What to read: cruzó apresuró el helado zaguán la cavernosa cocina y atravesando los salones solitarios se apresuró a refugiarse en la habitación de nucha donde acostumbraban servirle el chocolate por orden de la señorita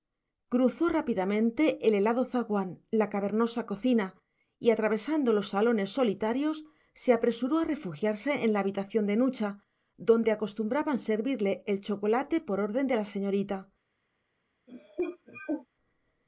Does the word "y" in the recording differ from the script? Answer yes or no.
no